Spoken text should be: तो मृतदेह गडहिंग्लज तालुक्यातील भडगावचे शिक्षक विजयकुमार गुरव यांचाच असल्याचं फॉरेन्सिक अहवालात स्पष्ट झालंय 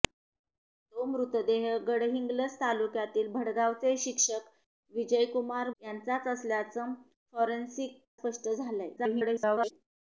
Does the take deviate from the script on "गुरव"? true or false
true